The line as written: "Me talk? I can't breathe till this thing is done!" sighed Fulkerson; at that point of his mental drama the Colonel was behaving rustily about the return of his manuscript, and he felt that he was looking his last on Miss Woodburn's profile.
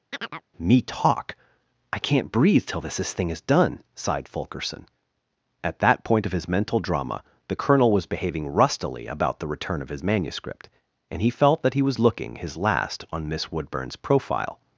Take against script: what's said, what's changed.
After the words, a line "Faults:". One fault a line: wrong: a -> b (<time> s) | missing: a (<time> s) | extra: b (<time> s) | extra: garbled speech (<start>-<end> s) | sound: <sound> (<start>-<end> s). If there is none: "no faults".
"Me talk? I can't breathe till this this thing is done!" sighed Fulkerson; at that point of his mental drama the Colonel was behaving rustily about the return of his manuscript, and he felt that he was looking his last on Miss Woodburn's profile.
Faults:
sound: chirp (0.1-0.4 s)
extra: this (3.0 s)